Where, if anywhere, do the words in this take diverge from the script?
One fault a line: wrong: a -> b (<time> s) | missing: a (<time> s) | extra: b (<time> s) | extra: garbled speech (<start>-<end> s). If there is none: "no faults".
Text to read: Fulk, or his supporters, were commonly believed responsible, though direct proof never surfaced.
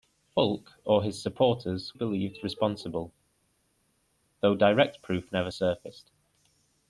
missing: were commonly (2.0 s)